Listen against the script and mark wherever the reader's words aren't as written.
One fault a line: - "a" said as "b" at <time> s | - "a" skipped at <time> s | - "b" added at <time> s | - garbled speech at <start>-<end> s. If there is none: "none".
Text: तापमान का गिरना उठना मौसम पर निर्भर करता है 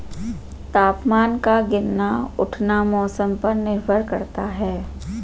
none